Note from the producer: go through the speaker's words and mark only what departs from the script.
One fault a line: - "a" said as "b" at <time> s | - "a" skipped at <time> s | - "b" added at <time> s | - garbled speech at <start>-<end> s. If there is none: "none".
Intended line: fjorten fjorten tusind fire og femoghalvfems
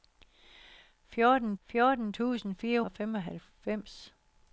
none